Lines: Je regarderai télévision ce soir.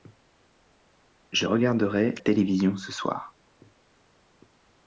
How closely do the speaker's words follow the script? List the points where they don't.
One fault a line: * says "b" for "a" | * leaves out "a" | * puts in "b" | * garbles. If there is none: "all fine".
all fine